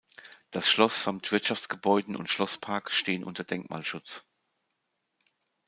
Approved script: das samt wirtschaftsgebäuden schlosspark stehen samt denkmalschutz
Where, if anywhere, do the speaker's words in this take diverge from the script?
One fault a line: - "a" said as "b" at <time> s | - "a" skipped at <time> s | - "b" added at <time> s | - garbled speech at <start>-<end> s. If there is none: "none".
- "schloss" added at 0.7 s
- "und" added at 2.1 s
- "samt" said as "unter" at 3.2 s